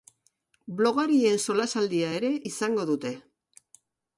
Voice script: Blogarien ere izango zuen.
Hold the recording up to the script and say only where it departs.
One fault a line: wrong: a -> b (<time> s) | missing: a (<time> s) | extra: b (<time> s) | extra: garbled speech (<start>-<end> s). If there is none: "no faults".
extra: solasaldia (1.4 s)
wrong: zuen -> dute (2.9 s)